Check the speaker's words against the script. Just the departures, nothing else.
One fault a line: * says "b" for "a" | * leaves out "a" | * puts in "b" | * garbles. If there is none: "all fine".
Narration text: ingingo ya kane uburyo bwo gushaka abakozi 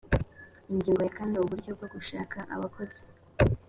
all fine